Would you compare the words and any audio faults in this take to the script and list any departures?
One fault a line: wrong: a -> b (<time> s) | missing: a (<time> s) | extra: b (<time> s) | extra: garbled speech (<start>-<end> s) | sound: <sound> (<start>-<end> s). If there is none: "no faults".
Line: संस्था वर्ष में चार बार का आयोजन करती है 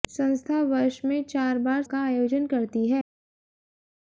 no faults